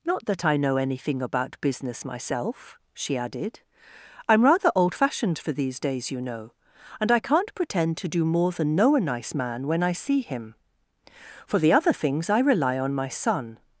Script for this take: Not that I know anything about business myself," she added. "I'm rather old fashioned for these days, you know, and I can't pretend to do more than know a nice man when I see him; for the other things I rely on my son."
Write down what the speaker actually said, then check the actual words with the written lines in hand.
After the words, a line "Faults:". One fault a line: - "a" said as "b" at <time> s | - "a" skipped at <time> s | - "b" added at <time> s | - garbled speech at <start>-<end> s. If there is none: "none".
Not that I know anything about business myself," she added. "I'm rather old fashioned for these days, you know, and I can't pretend to do more than know a nice man when I see him; for the other things I rely on my son."
Faults:
none